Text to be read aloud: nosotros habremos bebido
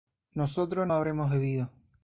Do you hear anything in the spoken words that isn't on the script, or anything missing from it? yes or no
no